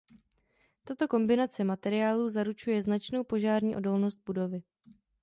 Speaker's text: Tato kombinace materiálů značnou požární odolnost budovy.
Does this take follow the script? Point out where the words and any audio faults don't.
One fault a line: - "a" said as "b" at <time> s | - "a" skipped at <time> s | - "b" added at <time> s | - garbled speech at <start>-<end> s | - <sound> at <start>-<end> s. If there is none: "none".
- "zaručuje" added at 2.3 s